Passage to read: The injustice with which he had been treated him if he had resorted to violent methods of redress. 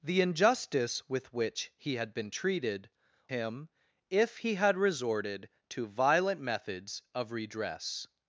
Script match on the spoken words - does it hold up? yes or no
yes